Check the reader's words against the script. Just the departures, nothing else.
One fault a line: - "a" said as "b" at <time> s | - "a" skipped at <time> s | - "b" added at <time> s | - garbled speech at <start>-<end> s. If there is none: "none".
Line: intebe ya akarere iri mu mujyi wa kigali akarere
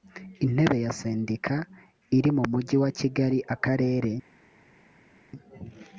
- "akarere" said as "sendika" at 1.0 s